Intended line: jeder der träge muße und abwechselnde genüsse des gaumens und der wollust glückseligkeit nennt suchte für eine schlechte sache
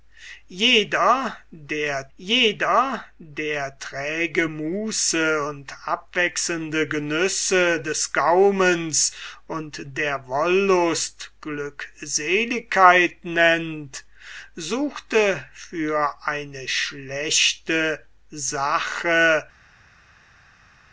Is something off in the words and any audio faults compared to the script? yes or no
yes